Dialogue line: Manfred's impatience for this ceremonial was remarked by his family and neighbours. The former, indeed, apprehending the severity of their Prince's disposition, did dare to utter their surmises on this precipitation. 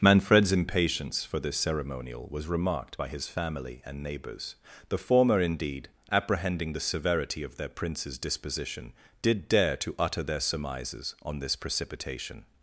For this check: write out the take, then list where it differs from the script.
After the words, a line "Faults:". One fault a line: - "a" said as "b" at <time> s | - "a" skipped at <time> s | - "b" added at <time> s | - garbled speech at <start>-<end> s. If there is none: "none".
Manfred's impatience for this ceremonial was remarked by his family and neighbours. The former, indeed, apprehending the severity of their Prince's disposition, did dare to utter their surmises on this precipitation.
Faults:
none